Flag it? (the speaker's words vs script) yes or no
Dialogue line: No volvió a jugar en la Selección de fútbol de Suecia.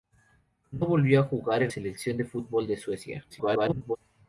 yes